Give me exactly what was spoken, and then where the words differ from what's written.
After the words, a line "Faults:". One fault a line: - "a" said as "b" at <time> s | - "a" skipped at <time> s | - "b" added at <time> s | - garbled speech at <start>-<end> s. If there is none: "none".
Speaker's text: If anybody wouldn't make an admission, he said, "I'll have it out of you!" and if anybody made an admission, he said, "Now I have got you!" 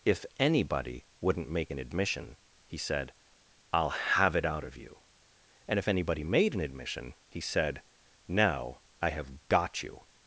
If anybody wouldn't make an admission, he said, "I'll have it out of you!" and if anybody made an admission, he said, "Now I have got you!"
Faults:
none